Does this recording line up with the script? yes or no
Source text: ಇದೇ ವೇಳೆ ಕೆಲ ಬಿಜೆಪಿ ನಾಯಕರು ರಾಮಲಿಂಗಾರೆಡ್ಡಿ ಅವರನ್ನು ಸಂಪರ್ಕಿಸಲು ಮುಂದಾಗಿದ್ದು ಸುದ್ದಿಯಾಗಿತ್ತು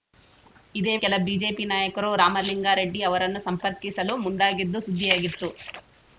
no